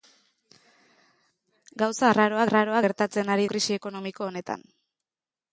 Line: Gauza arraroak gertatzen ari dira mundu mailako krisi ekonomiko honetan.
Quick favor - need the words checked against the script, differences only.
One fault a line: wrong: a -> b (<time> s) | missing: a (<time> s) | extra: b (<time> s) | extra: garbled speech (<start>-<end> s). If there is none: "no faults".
extra: arraroak (2.5 s)
missing: dira mundu mailako (3.5 s)